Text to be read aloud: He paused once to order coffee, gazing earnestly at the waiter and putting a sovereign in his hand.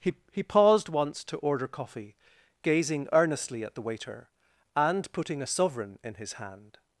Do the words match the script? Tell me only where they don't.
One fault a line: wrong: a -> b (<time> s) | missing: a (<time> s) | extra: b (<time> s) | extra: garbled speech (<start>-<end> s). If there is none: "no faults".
extra: he (0.3 s)